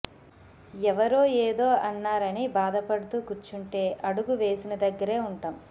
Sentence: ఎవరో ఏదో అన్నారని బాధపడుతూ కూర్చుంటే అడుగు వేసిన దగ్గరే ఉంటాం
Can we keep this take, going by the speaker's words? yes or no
yes